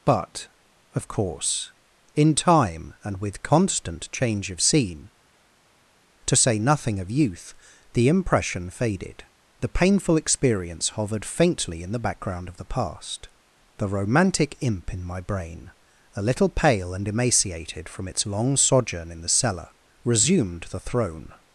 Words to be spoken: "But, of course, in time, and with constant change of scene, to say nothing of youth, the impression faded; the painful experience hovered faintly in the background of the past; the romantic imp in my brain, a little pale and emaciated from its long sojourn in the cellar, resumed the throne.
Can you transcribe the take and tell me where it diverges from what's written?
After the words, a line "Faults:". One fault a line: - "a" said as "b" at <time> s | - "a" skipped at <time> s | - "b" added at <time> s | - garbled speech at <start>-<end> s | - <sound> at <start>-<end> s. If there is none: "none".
"But, of course, in time, and with constant change of scene, to say nothing of youth, the impression faded; the painful experience hovered faintly in the background of the past; the romantic imp in my brain, a little pale and emaciated from its long sojourn in the cellar, resumed the throne.
Faults:
none